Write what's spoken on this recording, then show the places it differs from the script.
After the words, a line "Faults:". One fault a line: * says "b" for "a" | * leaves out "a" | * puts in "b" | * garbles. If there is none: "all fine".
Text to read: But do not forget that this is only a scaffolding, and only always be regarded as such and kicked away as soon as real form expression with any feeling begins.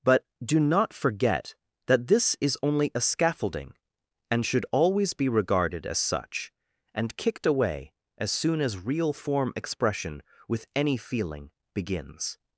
But do not forget that this is only a scaffolding, and should always be regarded as such and kicked away as soon as real form expression with any feeling begins.
Faults:
* says "should" for "only"